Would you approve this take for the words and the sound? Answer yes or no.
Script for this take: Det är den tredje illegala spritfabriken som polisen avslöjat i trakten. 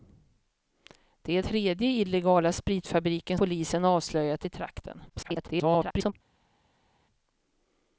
no